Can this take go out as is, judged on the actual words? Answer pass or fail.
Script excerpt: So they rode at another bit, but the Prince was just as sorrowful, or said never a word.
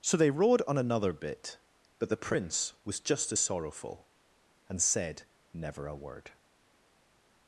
fail